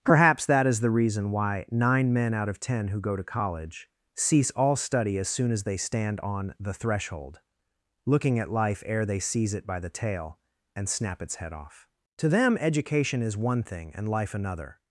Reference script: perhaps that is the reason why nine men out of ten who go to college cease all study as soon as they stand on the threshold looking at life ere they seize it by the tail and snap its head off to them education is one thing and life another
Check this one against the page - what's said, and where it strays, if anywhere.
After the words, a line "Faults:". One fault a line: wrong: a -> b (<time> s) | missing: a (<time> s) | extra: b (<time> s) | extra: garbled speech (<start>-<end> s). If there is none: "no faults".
perhaps that is the reason why nine men out of ten who go to college cease all study as soon as they stand on the threshold looking at life ere they seize it by the tail and snap its head off to them education is one thing and life another
Faults:
no faults